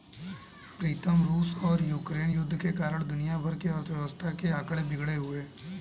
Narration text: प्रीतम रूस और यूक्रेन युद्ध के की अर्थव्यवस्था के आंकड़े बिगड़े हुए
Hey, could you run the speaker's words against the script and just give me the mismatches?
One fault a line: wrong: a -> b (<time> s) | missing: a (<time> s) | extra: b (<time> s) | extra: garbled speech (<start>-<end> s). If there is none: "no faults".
extra: कारण दुनिया भर (2.7 s)